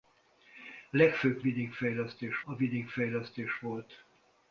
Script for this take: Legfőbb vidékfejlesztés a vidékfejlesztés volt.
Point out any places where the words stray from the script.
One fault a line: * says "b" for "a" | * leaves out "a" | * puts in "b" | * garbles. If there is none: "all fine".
all fine